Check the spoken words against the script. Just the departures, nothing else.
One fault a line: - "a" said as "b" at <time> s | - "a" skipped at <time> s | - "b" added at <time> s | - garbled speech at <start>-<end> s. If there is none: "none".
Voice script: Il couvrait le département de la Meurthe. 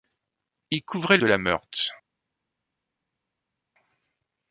- "le département" skipped at 1.2 s